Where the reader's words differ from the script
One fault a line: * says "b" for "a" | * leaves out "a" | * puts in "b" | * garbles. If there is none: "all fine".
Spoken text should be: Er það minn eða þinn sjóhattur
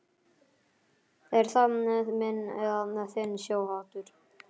all fine